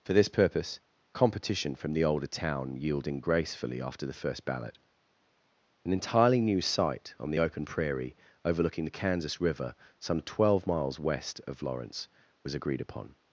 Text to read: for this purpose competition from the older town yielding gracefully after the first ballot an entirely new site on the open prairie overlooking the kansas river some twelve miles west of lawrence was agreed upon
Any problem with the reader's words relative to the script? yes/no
no